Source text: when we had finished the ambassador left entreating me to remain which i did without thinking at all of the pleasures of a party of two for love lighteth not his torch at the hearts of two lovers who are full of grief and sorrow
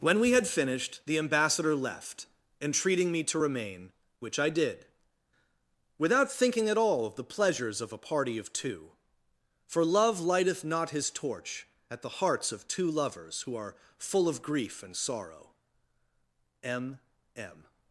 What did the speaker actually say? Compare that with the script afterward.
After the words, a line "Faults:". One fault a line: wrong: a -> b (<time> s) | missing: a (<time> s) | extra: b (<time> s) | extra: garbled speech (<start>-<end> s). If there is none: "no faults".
when we had finished the ambassador left entreating me to remain which i did without thinking at all of the pleasures of a party of two for love lighteth not his torch at the hearts of two lovers who are full of grief and sorrow m m
Faults:
extra: m m (16.6 s)